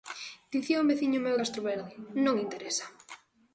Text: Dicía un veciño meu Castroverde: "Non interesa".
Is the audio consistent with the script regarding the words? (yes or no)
yes